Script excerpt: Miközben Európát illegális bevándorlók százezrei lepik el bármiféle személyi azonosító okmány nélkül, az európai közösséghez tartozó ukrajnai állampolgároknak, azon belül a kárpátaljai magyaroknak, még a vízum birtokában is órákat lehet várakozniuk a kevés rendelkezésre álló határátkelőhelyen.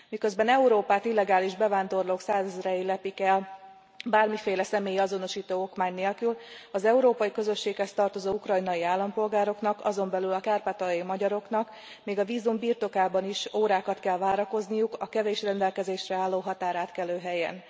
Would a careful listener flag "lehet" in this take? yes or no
yes